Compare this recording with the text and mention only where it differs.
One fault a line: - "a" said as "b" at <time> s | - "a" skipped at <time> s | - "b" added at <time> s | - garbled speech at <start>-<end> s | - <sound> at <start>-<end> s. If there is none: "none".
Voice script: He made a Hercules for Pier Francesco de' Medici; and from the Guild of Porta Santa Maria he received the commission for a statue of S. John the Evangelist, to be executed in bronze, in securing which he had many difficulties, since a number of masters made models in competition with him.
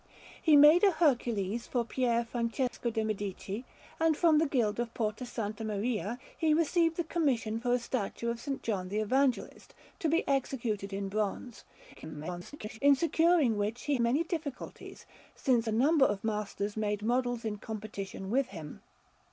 - dropout at 2.7-2.7 s
- garbled speech at 11.9-12.8 s
- "had" skipped at 14.0 s